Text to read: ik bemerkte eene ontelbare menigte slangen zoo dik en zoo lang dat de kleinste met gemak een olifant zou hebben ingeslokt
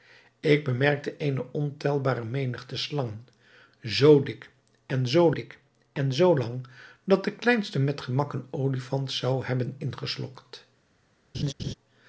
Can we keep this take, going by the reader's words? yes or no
no